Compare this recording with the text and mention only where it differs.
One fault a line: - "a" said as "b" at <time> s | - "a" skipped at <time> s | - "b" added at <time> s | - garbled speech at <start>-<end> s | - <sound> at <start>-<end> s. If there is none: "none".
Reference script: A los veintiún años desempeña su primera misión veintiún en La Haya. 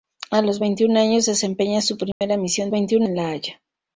- dropout at 2.1-2.2 s